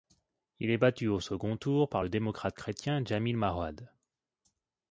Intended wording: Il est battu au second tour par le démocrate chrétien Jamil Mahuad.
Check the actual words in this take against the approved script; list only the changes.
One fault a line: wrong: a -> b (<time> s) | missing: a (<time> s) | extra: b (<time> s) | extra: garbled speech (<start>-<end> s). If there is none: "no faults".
no faults